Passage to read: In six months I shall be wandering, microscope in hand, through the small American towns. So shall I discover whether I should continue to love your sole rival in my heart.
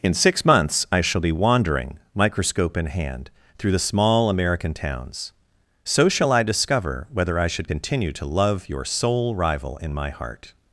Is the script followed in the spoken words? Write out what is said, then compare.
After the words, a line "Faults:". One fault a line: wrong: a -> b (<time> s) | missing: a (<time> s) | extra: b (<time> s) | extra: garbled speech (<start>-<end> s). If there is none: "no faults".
In six months I shall be wandering, microscope in hand, through the small American towns. So shall I discover whether I should continue to love your sole rival in my heart.
Faults:
no faults